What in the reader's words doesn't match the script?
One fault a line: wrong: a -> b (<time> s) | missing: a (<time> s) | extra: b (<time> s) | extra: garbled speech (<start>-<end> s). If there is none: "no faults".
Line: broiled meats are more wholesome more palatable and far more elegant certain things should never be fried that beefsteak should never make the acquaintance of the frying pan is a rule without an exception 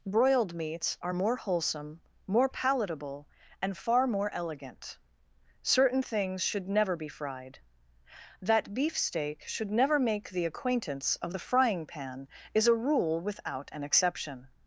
no faults